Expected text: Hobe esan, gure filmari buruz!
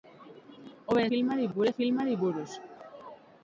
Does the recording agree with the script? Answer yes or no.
no